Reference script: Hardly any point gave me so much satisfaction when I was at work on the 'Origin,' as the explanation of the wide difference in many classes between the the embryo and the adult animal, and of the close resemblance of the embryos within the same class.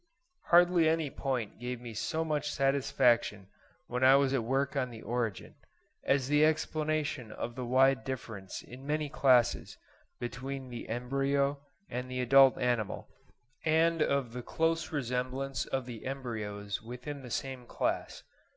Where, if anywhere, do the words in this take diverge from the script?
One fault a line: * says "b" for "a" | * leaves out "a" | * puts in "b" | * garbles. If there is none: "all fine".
* leaves out "the"